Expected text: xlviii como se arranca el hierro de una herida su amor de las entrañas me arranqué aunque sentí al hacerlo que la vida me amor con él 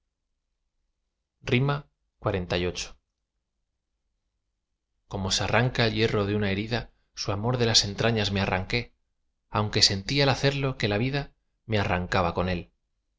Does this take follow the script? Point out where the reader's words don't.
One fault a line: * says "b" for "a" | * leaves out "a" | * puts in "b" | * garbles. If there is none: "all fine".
* says "arrancaba" for "amor"